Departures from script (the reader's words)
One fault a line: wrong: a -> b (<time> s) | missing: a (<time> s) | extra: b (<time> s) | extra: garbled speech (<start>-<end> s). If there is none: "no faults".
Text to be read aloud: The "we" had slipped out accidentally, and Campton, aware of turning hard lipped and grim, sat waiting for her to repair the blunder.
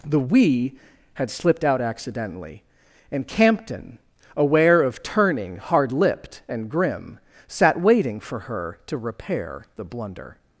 no faults